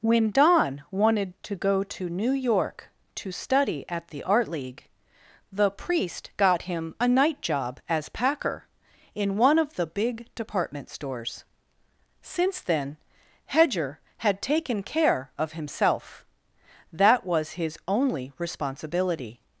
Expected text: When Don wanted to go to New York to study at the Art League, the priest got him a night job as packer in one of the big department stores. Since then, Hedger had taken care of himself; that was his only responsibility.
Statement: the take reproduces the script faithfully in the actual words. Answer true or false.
true